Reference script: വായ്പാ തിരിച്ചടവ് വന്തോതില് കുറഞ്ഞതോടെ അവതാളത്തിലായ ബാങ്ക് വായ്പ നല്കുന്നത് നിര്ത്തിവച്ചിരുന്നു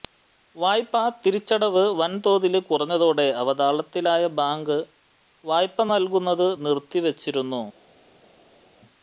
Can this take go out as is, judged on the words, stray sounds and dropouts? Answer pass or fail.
pass